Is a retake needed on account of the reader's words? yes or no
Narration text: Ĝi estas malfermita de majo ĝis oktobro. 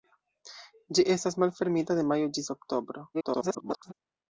yes